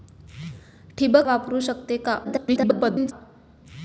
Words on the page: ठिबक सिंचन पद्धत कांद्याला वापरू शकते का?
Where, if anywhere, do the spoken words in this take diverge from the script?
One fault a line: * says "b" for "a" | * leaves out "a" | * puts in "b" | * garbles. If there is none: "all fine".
* leaves out "सिंचन पद्धत कांद्याला"
* garbles